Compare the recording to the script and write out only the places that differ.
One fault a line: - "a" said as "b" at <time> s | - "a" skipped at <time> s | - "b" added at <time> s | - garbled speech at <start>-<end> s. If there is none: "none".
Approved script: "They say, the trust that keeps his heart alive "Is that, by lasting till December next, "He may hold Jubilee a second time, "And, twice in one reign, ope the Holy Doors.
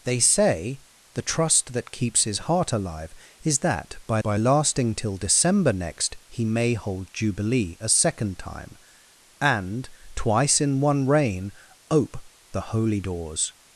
- "by" added at 4.2 s